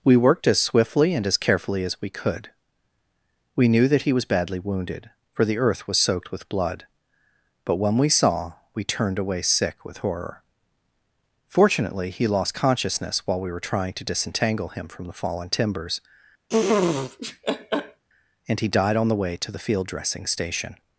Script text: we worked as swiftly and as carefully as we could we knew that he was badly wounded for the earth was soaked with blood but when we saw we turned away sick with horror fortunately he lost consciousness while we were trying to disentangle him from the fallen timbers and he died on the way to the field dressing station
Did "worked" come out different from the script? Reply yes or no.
no